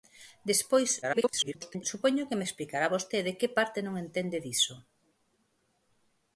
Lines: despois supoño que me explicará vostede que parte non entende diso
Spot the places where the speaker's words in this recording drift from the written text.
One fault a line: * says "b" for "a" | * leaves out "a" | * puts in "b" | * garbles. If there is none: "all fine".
* garbles